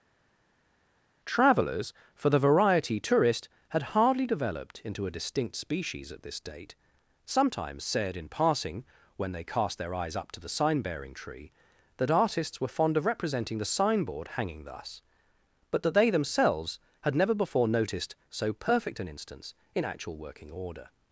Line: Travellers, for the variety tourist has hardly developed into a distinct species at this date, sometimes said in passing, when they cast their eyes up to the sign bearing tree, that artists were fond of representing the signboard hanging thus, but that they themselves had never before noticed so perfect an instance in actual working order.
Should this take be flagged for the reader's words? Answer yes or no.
yes